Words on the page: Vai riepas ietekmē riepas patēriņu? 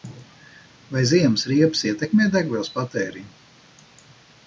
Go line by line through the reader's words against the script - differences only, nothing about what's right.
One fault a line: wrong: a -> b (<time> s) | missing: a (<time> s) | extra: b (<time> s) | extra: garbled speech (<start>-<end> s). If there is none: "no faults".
extra: ziemas (1.1 s)
wrong: riepas -> degvielas (2.4 s)